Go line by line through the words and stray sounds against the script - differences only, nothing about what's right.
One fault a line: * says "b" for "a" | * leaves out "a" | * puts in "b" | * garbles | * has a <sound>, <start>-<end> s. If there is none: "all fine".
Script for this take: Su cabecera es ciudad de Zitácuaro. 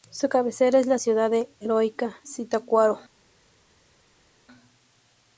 * puts in "la"
* puts in "Heroica"